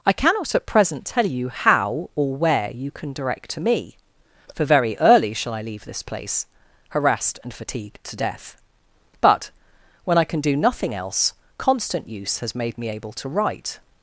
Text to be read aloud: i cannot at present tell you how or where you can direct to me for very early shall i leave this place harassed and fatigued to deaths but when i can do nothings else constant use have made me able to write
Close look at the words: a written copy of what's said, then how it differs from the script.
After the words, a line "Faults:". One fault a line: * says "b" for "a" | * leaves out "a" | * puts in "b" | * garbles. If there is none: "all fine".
i cannot at present tell you how or where you can direct to me for very early shall i leave this place harassed and fatigued to death but when i can do nothing else constant use has made me able to write
Faults:
* says "death" for "deaths"
* says "nothing" for "nothings"
* says "has" for "have"